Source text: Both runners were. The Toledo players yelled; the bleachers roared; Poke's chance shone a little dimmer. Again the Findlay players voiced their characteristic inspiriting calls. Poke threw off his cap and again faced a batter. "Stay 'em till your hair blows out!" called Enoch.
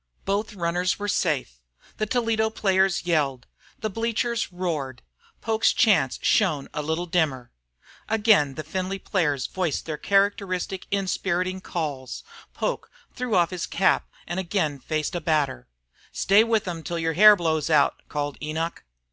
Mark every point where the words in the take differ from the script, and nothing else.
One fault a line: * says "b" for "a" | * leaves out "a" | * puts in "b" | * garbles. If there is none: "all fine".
* puts in "safe"
* puts in "with"